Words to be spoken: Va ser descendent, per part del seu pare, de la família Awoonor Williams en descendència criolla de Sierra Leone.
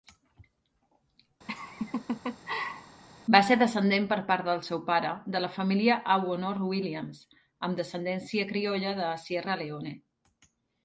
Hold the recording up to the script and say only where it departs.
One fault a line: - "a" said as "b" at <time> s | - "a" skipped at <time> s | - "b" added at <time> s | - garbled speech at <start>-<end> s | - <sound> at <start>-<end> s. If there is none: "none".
- laugh at 1.5-3.0 s
- "en" said as "amb" at 7.7 s